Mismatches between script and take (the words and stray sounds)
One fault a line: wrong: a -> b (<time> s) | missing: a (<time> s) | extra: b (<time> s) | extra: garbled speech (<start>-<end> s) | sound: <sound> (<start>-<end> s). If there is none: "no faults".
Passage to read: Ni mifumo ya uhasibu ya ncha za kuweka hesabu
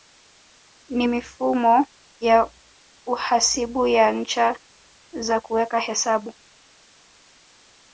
no faults